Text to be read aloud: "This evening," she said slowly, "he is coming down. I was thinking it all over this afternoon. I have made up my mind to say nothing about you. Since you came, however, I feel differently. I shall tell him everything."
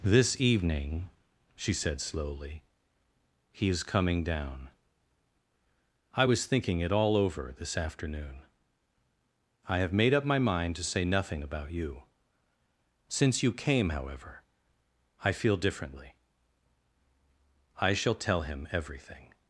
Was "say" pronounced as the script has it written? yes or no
yes